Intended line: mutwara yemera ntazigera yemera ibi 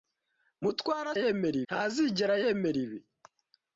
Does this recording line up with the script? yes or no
yes